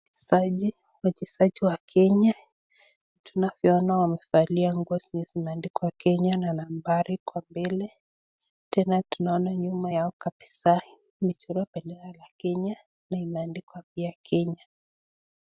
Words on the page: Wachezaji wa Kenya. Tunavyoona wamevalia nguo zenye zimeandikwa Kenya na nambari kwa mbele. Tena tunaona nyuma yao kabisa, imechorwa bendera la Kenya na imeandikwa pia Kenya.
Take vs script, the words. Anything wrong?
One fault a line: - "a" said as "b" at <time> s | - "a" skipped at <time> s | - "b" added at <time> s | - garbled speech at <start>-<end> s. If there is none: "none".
none